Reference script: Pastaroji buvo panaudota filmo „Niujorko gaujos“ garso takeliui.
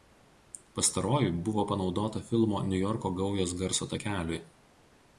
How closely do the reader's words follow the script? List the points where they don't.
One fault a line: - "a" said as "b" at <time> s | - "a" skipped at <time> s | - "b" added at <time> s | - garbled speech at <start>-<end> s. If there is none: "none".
none